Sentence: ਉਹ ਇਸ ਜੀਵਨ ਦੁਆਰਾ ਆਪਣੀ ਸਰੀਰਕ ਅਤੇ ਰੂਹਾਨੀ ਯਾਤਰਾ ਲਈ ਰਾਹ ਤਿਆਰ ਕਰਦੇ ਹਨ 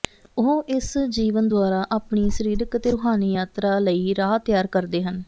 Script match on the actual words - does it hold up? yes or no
yes